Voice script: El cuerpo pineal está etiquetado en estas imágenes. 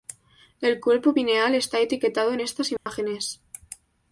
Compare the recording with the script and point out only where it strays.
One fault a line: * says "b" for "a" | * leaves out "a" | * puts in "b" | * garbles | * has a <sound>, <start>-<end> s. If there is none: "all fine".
* has a dropout, 2.8-2.9 s